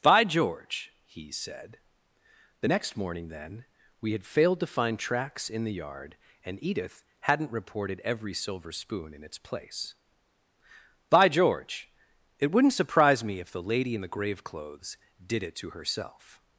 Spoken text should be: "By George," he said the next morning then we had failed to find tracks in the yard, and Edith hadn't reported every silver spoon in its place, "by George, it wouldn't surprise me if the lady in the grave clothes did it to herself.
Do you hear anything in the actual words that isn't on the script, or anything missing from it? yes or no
no